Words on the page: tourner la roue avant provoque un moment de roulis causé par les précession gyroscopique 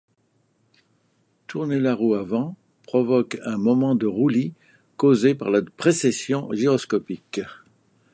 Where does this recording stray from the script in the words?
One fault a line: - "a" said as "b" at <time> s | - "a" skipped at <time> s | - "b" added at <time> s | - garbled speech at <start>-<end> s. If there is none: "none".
- "les" said as "la" at 5.5 s